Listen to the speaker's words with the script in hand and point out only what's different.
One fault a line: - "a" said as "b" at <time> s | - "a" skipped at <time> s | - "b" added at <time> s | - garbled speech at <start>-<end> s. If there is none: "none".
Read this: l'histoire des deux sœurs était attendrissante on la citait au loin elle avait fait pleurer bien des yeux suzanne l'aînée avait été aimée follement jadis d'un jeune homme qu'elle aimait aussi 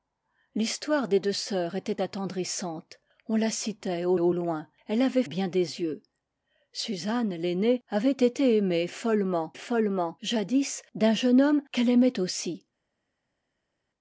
- "au" added at 4.2 s
- "fait pleurer" skipped at 5.2 s
- "follement" added at 9.5 s